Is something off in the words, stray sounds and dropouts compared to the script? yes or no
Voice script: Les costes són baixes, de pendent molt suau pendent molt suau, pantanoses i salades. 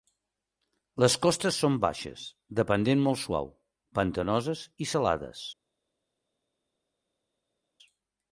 yes